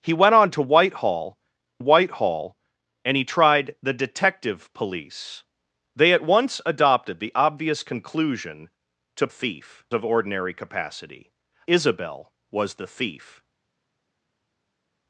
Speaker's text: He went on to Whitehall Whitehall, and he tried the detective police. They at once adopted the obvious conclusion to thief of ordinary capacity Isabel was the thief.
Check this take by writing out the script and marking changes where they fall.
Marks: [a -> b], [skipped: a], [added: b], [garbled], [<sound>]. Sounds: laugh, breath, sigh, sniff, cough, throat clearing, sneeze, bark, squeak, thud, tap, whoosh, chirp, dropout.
He went on to Whitehall Whitehall, and he tried the detective police. They at once adopted the obvious conclusion to thief of ordinary capacity Isabel was the thief.